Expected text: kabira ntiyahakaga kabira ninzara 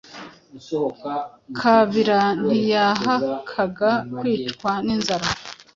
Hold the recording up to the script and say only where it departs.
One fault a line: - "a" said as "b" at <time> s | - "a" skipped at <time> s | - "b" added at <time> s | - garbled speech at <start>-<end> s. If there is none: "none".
- "kabira" said as "kwicwa" at 4.2 s